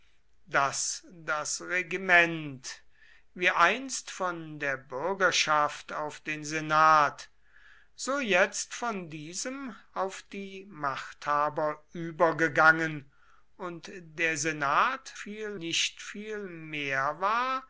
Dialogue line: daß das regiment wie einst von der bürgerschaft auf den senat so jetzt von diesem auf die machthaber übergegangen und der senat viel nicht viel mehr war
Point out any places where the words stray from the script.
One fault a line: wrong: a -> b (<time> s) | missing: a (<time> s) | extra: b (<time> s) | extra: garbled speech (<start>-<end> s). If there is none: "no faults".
no faults